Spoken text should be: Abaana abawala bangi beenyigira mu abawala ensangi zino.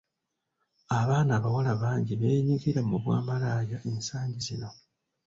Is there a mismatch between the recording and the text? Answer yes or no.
yes